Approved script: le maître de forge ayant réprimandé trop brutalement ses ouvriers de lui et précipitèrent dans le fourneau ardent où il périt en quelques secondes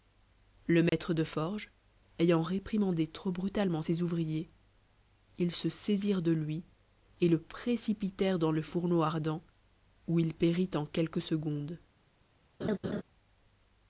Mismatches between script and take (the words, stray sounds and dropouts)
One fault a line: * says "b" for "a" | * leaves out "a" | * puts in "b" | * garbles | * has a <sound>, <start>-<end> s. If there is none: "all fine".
* has a dropout, 0.9-0.9 s
* puts in "ils se saisirent"
* puts in "le"
* has a laugh, 12.6-13.0 s